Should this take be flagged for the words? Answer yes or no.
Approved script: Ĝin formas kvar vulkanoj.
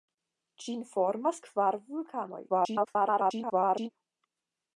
yes